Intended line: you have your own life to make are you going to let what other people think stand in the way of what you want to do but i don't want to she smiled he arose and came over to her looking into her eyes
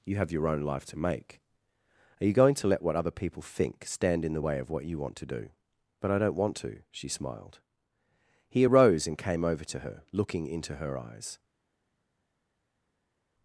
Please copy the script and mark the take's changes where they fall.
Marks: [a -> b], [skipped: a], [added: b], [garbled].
you have your own life to make are you going to let what other people think stand in the way of what you want to do but i don't want to she smiled he arose and came over to her looking into her eyes